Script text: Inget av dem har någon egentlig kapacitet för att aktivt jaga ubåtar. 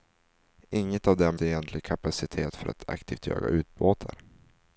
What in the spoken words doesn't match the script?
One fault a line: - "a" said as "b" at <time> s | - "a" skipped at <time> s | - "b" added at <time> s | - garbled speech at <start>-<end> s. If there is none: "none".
- "har någon" skipped at 1.4 s